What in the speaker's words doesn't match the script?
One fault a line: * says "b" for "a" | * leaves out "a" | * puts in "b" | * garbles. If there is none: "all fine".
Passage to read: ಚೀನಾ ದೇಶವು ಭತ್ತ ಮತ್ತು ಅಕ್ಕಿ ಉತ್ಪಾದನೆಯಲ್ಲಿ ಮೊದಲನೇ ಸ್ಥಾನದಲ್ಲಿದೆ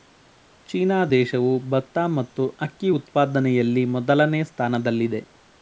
all fine